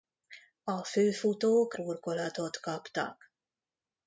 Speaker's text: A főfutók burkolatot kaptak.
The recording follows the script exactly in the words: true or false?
true